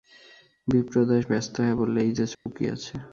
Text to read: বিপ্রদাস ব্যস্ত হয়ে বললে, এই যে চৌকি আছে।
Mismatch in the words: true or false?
false